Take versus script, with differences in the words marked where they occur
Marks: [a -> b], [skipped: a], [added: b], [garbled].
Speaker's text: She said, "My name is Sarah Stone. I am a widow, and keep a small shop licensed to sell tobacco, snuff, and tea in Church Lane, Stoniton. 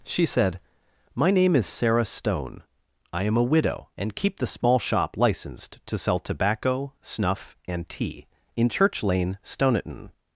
She said, "My name is Sarah Stone. I am a widow, and keep [a -> the] small shop licensed to sell tobacco, snuff, and tea in Church Lane, Stoniton.